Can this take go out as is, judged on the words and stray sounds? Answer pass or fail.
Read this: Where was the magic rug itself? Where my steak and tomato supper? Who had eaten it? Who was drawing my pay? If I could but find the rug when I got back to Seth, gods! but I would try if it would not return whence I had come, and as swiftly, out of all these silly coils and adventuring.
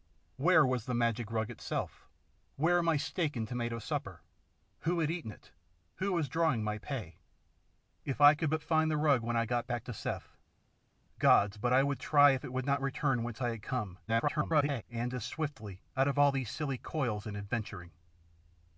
fail